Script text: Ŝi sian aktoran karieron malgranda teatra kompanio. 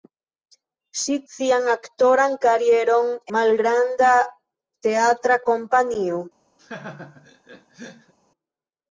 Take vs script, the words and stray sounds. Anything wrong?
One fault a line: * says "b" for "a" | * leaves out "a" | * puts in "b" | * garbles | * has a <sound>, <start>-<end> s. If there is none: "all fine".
* has a laugh, 6.6-8.1 s